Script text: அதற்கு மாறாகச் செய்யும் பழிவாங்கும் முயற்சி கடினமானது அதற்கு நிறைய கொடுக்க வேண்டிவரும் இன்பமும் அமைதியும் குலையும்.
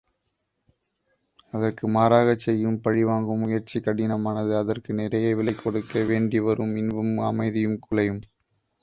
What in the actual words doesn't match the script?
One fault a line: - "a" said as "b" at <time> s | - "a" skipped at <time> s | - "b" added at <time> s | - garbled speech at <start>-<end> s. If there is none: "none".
- "விலை" added at 5.3 s